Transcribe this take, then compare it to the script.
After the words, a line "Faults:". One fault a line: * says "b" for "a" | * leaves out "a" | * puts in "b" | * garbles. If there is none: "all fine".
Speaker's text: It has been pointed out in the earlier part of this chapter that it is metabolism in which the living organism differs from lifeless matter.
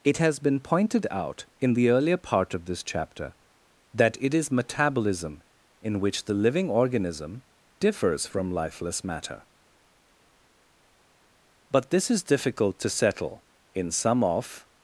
It has been pointed out in the earlier part of this chapter that it is metabolism in which the living organism differs from lifeless matter. But this is difficult to settle in some of
Faults:
* puts in "But this is difficult to settle in some of"